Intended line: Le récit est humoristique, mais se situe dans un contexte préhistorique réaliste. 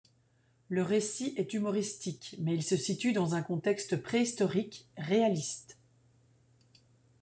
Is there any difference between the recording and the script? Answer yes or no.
yes